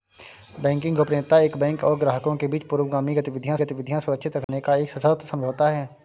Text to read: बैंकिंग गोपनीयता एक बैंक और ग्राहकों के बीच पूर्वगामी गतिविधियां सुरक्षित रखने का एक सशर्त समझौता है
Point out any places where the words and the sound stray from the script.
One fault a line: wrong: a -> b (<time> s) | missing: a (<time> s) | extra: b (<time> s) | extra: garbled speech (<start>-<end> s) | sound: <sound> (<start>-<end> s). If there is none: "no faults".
extra: गतिविधियां (3.6 s)
sound: dropout (4.4-4.5 s)